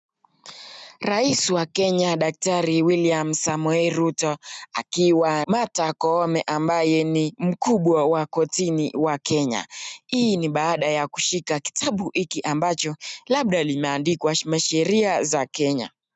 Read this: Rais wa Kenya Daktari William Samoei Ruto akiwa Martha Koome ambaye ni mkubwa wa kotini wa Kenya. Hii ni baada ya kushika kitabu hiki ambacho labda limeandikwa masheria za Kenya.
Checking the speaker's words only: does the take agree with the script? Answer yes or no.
yes